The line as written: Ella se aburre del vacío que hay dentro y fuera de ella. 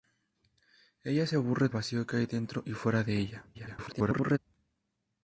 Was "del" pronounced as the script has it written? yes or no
no